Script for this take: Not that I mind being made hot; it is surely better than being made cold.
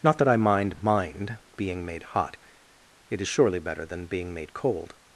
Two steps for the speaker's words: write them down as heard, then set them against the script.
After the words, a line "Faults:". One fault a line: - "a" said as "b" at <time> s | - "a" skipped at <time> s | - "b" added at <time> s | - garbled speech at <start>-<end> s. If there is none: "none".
Not that I mind mind being made hot; it is surely better than being made cold.
Faults:
- "mind" added at 0.8 s